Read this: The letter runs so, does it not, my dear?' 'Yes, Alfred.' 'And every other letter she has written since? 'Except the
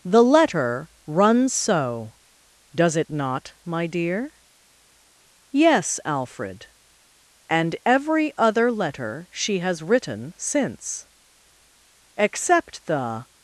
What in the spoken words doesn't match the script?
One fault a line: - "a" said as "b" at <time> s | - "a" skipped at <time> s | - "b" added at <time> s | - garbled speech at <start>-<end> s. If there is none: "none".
none